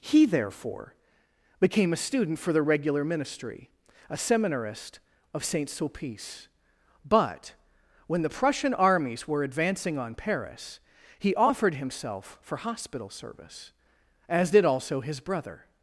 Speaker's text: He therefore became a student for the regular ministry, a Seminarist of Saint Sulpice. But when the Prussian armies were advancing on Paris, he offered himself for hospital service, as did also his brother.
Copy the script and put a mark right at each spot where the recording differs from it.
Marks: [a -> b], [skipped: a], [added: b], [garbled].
He therefore became a student for the regular ministry, a Seminarist of Saint Sulpice. But when the Prussian armies were advancing on Paris, he offered himself for hospital service, as did also his brother.